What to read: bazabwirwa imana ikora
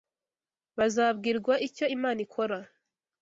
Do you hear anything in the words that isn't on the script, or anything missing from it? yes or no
yes